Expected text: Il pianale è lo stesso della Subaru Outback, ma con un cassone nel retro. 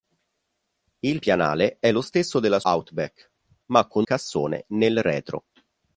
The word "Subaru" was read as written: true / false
false